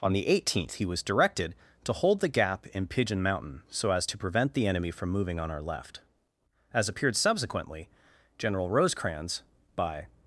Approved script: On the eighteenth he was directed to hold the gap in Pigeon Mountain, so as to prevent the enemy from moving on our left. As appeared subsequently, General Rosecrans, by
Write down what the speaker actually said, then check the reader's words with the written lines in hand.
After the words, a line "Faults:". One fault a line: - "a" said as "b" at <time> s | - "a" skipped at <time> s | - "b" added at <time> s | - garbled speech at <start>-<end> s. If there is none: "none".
On the eighteenth he was directed to hold the gap in Pigeon Mountain, so as to prevent the enemy from moving on our left. As appeared subsequently, General Rosecrans, by
Faults:
none